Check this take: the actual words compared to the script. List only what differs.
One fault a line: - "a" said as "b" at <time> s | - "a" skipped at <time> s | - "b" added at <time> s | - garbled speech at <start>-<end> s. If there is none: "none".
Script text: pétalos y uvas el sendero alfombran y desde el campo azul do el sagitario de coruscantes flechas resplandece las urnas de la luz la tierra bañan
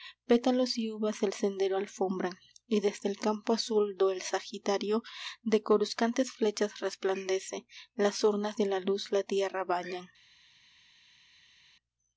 none